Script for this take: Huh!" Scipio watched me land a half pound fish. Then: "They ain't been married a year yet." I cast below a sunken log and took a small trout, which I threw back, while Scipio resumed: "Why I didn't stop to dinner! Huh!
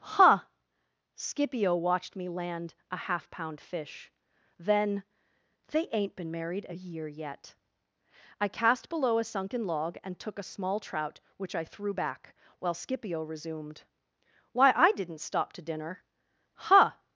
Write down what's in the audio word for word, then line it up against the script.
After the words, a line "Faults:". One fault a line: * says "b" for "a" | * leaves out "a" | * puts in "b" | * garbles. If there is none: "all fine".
Huh!" Scipio watched me land a half pound fish. Then: "They ain't been married a year yet." I cast below a sunken log and took a small trout, which I threw back, while Scipio resumed: "Why I didn't stop to dinner! Huh!
Faults:
all fine